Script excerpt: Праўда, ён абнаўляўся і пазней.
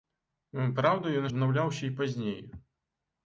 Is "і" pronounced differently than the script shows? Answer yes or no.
no